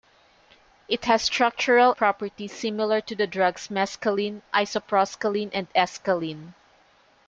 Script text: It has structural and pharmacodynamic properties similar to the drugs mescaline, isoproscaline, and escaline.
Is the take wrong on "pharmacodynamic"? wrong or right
wrong